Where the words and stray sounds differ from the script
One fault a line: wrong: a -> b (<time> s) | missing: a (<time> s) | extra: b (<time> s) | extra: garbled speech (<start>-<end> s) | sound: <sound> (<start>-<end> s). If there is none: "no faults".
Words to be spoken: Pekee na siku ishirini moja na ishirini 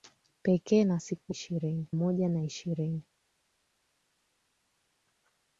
no faults